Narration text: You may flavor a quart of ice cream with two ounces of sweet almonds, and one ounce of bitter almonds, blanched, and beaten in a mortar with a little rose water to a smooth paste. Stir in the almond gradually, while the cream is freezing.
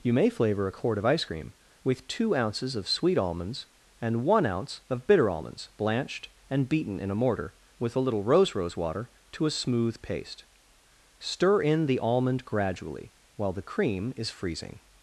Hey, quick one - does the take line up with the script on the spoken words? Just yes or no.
no